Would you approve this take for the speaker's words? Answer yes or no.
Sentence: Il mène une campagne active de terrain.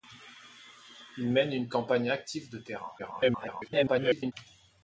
no